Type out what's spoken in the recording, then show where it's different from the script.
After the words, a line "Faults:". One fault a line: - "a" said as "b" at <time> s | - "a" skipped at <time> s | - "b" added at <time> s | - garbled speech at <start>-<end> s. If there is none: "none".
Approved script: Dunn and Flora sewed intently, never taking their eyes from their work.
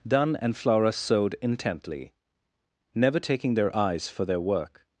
Dunn and Flora sewed intently, never taking their eyes for their work.
Faults:
- "from" said as "for" at 4.1 s